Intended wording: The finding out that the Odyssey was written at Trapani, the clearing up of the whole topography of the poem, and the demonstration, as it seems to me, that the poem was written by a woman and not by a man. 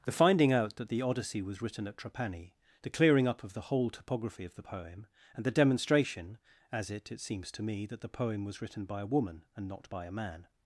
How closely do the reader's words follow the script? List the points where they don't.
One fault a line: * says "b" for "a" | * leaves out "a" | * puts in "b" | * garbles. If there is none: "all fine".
* puts in "it"